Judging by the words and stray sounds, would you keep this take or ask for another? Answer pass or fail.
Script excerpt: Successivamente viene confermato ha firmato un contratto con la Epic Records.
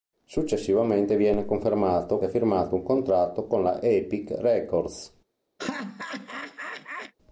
fail